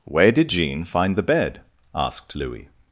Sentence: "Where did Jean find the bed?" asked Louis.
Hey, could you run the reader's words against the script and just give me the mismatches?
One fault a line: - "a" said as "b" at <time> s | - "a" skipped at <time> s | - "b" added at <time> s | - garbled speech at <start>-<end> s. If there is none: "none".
none